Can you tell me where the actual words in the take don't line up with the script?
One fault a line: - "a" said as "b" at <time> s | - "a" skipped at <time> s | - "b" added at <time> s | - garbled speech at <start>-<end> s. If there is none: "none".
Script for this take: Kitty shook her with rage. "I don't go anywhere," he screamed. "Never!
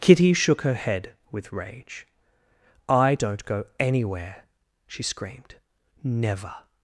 - "head" added at 0.7 s
- "he" said as "she" at 4.9 s